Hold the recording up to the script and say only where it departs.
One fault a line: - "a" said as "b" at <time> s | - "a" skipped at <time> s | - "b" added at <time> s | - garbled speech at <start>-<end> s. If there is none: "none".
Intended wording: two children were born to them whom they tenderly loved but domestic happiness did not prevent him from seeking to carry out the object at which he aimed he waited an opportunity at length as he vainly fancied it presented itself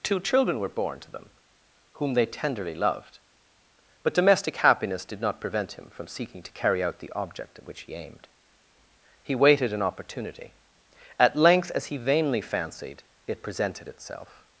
none